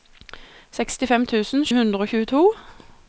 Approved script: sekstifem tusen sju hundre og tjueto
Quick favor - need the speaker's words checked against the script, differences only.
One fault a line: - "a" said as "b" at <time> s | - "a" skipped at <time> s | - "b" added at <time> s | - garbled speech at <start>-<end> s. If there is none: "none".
- "sju" skipped at 1.7 s